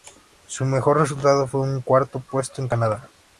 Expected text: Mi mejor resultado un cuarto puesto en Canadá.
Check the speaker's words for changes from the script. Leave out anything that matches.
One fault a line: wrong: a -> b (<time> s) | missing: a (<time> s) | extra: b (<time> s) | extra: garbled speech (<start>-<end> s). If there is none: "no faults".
wrong: Mi -> Su (0.5 s)
extra: fue (1.5 s)